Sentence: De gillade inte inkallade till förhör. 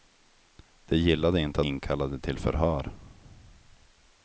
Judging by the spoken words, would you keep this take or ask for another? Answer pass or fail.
pass